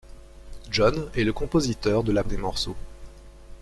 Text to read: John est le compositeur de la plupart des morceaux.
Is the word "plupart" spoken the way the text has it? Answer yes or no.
no